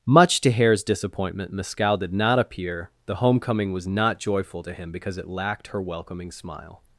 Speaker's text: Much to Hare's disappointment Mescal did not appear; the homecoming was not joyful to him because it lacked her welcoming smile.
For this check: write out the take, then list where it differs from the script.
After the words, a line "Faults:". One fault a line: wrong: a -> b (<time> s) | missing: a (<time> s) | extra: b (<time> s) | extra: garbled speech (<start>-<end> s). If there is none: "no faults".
Much to Hare's disappointment Mescal did not appear; the homecoming was not joyful to him because it lacked her welcoming smile.
Faults:
no faults